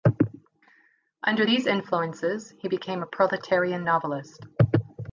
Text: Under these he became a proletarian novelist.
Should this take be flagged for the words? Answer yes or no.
yes